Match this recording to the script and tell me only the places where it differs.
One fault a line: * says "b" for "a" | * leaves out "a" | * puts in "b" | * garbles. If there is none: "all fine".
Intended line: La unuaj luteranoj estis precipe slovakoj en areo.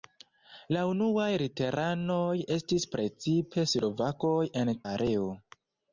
all fine